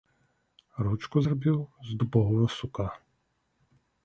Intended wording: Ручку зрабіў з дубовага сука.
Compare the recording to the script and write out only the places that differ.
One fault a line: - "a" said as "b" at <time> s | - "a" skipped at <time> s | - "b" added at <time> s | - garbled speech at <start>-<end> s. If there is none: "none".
none